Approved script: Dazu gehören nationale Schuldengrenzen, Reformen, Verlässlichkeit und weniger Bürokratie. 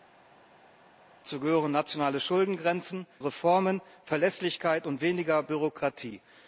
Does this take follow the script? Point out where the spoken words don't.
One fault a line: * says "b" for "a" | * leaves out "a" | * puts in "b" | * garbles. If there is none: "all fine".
all fine